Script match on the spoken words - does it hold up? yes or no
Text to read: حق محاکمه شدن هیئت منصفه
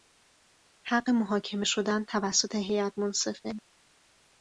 no